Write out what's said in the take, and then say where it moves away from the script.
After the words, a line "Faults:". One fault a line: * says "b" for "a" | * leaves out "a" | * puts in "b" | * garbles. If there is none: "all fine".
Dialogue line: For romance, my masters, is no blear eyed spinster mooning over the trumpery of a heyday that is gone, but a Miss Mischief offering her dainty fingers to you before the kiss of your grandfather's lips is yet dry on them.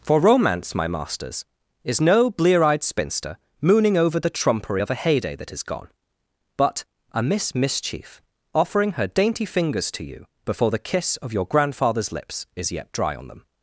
For romance, my masters, is no blear eyed spinster mooning over the trumpery of a heyday that is gone, but a Miss Mischief offering her dainty fingers to you before the kiss of your grandfather's lips is yet dry on them.
Faults:
all fine